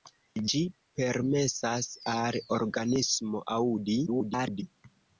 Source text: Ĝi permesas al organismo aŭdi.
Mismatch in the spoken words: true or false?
true